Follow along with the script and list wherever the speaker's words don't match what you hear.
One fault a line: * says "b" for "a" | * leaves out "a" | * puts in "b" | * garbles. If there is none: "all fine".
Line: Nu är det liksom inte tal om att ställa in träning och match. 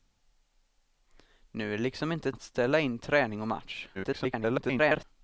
* leaves out "tal om"
* garbles